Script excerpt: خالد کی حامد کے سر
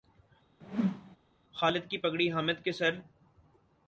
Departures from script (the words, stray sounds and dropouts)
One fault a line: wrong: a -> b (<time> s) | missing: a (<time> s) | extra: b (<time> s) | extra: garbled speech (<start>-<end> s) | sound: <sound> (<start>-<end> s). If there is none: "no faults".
sound: whoosh (0.6-1.2 s)
extra: پگڑی (2.0 s)